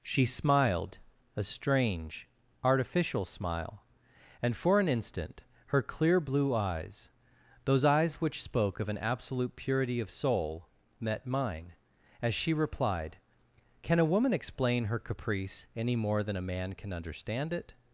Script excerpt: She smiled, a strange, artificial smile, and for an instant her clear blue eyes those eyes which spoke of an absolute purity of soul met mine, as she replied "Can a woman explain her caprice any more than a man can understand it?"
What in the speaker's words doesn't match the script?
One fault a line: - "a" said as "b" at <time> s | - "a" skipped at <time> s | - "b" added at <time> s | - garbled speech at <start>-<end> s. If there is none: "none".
none